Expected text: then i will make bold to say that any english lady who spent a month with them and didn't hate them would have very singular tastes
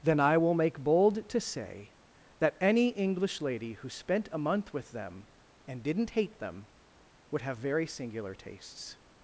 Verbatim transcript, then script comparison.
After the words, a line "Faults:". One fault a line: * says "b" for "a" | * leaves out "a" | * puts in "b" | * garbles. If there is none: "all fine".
then i will make bold to say that any english lady who spent a month with them and didn't hate them would have very singular tastes
Faults:
all fine